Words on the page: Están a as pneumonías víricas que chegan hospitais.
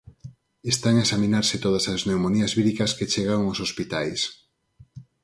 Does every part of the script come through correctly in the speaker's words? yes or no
no